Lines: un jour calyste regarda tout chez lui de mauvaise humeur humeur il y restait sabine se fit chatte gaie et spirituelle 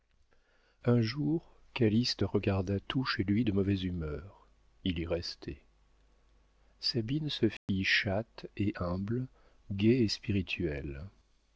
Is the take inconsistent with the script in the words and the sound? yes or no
yes